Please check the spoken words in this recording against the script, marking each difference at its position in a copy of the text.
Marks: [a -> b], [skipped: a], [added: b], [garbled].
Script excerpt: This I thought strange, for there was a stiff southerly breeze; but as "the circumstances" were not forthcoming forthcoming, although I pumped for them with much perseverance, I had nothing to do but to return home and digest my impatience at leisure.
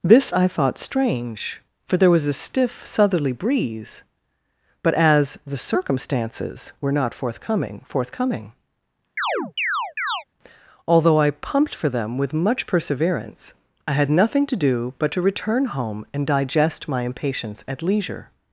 This I thought strange, for there was a stiff southerly breeze; but as "the circumstances" were not forthcoming forthcoming, although I pumped for them with much perseverance, I had nothing to do but to return home and digest my impatience at leisure.